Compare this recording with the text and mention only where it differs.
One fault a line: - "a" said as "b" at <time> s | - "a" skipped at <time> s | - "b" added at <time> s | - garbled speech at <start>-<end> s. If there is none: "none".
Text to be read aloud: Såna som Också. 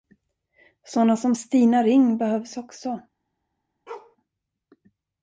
- "Stina Ring behövs" added at 1.3 s